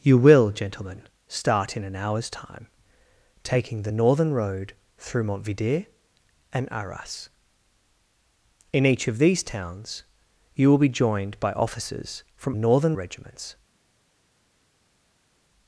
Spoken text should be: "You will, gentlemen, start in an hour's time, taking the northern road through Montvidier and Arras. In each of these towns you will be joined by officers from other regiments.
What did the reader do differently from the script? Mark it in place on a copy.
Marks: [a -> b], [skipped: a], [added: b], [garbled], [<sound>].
"You will, gentlemen, start in an hour's time, taking the northern road through Montvidier and Arras. In each of these towns you will be joined by officers from [other -> northern] regiments.